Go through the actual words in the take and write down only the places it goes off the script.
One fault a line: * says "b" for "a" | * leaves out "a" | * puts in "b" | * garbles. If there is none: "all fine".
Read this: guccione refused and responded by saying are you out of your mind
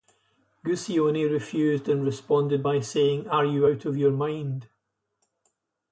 all fine